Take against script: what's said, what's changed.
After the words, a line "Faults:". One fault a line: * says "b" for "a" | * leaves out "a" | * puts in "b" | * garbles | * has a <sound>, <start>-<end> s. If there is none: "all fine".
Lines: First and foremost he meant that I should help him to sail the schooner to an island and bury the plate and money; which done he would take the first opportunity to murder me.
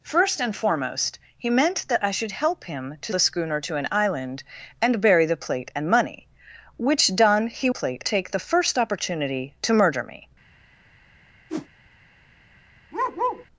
First and foremost he meant that I should help him to the schooner to an island and bury the plate and money; which done he plate take the first opportunity to murder me.
Faults:
* leaves out "sail"
* says "plate" for "would"
* has a whoosh, 11.5-11.7 s
* has a bark, 12.9-13.5 s